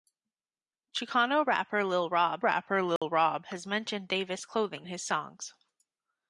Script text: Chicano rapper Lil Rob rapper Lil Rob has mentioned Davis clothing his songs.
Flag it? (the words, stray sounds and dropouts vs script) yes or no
yes